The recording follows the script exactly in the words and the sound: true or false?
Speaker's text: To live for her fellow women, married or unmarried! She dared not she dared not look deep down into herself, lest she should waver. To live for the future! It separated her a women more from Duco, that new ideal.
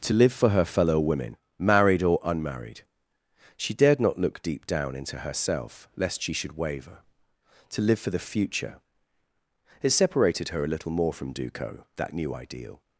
false